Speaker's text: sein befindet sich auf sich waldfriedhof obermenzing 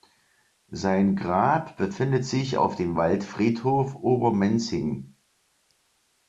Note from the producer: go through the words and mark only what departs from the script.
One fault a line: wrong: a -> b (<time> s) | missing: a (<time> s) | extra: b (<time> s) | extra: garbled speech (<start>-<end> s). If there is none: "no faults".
extra: grab (1.1 s)
wrong: sich -> dem (2.8 s)